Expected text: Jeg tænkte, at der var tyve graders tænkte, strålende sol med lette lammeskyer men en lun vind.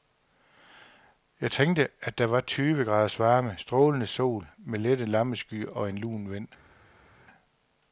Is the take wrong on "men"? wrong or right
wrong